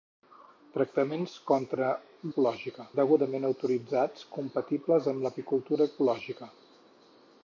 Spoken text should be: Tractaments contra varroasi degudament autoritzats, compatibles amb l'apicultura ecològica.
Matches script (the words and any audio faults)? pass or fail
fail